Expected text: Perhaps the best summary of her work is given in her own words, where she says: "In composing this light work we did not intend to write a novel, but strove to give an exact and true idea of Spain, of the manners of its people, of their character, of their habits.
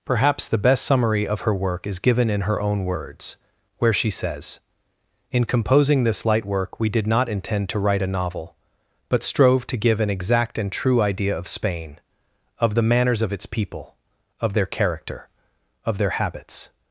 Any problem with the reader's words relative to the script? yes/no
no